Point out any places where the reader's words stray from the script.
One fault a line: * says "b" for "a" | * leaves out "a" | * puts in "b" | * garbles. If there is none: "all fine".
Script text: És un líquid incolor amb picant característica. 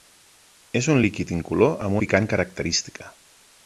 all fine